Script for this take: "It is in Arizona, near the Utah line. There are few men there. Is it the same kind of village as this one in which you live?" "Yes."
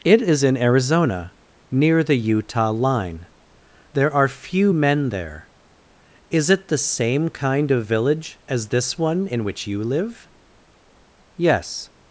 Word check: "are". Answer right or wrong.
right